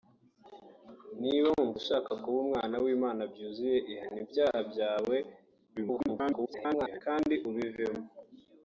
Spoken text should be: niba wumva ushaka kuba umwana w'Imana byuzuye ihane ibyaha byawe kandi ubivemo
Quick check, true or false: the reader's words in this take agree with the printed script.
false